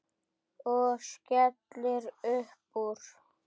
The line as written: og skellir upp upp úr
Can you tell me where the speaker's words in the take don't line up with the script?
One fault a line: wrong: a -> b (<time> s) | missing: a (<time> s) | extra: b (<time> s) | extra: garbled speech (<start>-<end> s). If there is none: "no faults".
missing: upp (2.8 s)